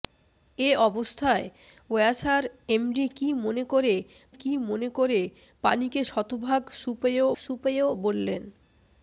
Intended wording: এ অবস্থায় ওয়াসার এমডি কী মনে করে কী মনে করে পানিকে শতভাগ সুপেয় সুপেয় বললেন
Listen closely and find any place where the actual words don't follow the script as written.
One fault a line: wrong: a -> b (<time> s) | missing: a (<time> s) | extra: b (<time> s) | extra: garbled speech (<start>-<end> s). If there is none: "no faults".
no faults